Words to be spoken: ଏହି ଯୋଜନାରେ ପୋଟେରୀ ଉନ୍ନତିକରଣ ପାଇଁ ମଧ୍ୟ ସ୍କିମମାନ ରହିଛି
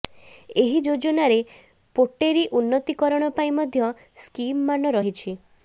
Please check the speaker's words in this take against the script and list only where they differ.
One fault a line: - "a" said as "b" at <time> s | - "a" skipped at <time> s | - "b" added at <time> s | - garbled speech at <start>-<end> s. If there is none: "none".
none